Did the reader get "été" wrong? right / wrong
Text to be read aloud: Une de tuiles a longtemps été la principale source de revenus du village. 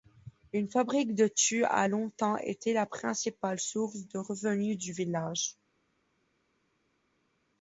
right